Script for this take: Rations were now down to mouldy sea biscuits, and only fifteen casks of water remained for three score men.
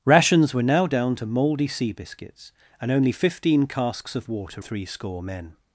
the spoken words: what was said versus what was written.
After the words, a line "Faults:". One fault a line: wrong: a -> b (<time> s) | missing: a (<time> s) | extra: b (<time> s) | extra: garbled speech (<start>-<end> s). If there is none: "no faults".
Rations were now down to mouldy sea biscuits, and only fifteen casks of water three score men.
Faults:
missing: remained for (4.6 s)